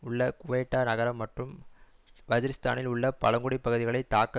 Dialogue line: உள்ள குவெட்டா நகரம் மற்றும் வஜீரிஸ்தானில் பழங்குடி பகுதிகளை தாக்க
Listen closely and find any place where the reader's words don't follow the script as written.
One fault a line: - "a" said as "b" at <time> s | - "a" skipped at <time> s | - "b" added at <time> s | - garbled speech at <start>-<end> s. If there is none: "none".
- "உள்ள" added at 2.9 s